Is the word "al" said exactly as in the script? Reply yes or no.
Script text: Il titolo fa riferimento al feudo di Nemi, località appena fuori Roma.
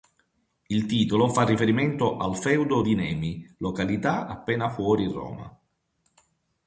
yes